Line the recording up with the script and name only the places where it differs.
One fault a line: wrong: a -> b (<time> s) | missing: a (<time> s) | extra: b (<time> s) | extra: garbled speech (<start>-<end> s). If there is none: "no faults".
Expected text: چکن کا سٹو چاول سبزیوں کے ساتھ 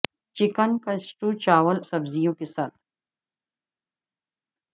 no faults